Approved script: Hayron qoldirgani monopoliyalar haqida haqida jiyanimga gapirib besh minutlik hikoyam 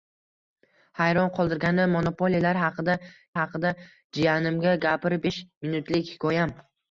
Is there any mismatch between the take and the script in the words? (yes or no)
no